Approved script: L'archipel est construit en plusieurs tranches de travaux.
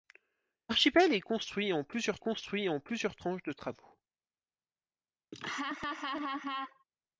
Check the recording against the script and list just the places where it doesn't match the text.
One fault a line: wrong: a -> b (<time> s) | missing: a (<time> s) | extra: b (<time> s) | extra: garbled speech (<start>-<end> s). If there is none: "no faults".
extra: construit en plusieurs (2.2 s)